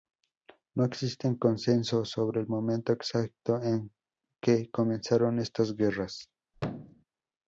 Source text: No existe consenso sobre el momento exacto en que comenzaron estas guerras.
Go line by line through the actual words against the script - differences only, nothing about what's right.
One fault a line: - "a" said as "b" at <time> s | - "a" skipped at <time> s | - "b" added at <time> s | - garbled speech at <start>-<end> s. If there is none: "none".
none